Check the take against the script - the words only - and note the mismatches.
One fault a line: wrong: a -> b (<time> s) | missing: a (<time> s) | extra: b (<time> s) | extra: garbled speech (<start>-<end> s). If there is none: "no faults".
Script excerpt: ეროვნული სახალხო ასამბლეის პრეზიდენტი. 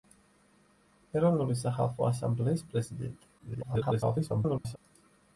extra: garbled speech (3.4-4.8 s)